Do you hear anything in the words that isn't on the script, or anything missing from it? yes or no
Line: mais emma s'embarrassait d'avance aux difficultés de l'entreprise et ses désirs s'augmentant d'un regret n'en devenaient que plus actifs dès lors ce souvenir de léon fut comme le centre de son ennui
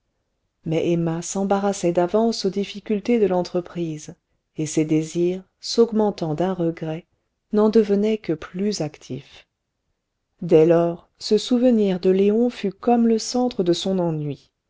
no